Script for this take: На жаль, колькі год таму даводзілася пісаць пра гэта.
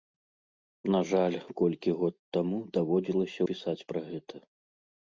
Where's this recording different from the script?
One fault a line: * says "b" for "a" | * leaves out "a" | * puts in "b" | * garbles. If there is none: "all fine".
all fine